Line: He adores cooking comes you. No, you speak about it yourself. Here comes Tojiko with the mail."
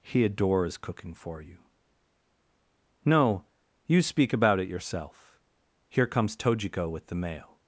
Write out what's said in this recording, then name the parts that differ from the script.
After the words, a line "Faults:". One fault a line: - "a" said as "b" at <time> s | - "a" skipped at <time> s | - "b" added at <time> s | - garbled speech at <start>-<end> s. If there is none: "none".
He adores cooking for you. No, you speak about it yourself. Here comes Tojiko with the mail."
Faults:
- "comes" said as "for" at 1.1 s